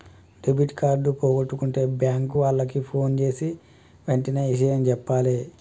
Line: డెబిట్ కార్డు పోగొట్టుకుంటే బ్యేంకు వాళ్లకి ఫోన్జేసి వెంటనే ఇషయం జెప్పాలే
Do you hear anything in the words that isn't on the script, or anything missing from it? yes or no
no